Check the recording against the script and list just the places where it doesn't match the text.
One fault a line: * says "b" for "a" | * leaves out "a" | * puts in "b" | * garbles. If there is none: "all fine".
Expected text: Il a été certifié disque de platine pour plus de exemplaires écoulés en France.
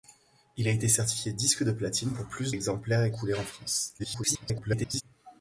* leaves out "de"
* garbles